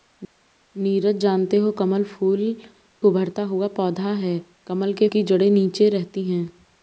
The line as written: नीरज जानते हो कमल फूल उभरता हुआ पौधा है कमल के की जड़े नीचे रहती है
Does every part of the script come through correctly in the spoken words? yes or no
yes